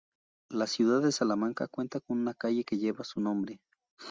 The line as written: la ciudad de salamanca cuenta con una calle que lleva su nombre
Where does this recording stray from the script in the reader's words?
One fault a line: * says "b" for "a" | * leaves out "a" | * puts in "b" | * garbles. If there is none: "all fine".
all fine